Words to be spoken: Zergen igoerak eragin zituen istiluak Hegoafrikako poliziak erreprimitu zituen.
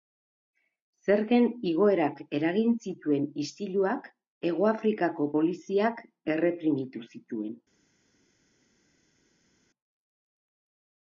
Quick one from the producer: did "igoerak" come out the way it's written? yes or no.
yes